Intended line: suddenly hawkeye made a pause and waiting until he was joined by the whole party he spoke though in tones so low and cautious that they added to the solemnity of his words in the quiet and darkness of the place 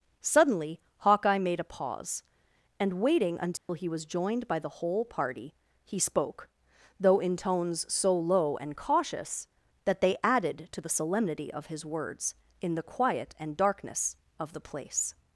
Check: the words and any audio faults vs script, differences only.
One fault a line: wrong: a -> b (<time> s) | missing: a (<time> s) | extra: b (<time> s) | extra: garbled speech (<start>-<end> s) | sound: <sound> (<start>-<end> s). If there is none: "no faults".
sound: dropout (3.6-3.7 s)